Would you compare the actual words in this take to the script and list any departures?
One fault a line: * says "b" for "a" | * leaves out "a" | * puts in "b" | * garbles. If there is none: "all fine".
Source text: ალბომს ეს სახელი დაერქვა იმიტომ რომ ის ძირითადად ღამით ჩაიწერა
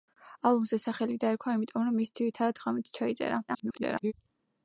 * garbles